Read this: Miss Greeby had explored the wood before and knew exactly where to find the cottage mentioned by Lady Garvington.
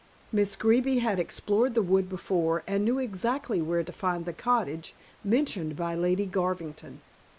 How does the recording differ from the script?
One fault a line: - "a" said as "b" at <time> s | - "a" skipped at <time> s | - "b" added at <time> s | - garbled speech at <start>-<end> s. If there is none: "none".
none